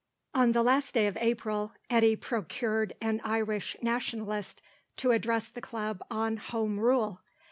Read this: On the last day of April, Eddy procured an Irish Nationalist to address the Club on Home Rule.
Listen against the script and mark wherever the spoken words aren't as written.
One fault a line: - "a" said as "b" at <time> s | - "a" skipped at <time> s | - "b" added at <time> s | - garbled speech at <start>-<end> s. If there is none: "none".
none